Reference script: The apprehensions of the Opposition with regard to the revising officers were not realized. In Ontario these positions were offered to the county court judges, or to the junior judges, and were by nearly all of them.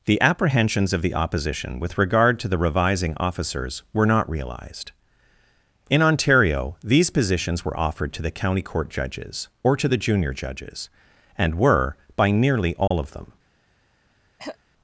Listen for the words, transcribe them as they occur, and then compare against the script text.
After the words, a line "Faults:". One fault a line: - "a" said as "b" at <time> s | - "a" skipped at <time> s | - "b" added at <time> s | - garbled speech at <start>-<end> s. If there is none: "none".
The apprehensions of the Opposition with regard to the revising officers were not realized. In Ontario these positions were offered to the county court judges, or to the junior judges, and were by nearly all of them.
Faults:
none